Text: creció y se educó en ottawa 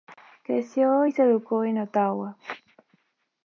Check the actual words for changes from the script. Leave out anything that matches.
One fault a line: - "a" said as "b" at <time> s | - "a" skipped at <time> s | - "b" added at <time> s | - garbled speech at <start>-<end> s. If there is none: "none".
none